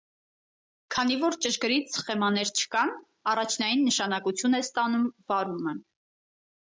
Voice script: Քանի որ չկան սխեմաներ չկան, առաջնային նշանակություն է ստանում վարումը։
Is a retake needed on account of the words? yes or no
yes